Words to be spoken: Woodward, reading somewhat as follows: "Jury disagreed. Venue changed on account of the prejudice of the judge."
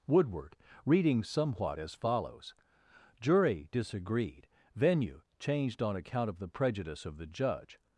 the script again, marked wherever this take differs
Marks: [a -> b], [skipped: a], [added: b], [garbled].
Woodward, reading somewhat as follows: "Jury disagreed. Venue changed on account of the prejudice of the judge."